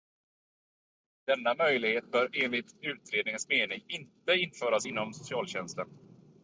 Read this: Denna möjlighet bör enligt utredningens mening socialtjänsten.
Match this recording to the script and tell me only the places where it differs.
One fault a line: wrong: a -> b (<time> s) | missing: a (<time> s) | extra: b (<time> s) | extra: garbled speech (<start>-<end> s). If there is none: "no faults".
extra: inte införas inom (3.9 s)